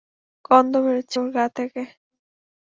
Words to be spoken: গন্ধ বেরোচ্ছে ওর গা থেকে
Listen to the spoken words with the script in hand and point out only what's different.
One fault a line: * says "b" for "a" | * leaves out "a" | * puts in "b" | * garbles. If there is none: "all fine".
all fine